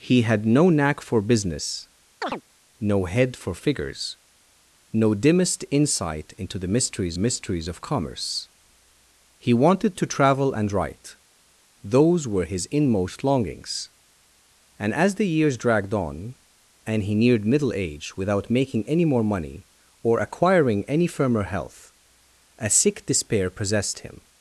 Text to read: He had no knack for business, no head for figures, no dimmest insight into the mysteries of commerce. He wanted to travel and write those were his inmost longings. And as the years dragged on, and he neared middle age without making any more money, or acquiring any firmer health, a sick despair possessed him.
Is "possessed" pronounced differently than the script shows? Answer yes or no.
no